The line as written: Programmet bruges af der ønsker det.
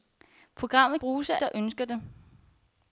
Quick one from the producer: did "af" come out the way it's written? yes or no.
yes